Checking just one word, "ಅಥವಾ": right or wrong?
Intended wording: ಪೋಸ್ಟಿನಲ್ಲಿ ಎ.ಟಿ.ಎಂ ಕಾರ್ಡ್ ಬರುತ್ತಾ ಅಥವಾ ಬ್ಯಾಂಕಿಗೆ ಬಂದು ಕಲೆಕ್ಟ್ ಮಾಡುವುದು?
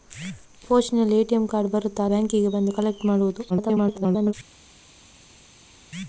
wrong